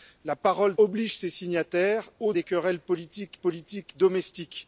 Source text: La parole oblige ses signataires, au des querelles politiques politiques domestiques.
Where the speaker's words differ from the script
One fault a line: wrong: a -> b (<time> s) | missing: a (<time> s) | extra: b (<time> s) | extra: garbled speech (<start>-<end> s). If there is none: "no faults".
no faults